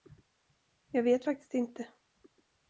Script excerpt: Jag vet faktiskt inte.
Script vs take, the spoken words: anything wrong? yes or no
no